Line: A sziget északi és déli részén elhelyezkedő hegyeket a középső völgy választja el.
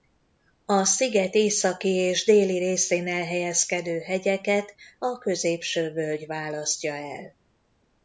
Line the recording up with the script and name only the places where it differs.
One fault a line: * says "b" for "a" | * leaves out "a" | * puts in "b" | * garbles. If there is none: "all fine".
all fine